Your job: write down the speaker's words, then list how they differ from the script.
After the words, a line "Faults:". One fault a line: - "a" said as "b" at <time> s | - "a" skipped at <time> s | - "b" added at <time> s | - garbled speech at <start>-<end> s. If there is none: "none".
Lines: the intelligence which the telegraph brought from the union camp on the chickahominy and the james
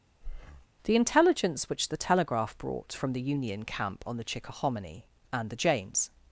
the intelligence which the telegraph brought from the union camp on the chickahominy and the james
Faults:
none